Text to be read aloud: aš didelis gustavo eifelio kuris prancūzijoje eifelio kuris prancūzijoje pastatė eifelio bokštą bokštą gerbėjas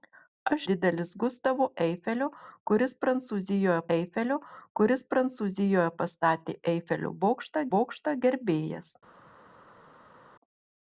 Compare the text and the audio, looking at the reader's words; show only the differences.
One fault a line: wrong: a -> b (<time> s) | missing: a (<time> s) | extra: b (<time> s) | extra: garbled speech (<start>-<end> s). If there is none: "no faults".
no faults